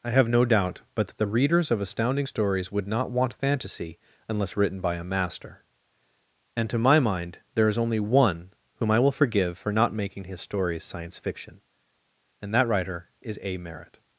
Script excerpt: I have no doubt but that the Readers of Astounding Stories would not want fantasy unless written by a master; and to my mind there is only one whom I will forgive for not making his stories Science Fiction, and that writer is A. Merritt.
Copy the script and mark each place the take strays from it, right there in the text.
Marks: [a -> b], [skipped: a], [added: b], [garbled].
I have no doubt but that the Readers of Astounding Stories would not want fantasy unless written by a master; and to my mind there is only one whom I will forgive for not making his stories Science Fiction, and that writer is A. Merritt.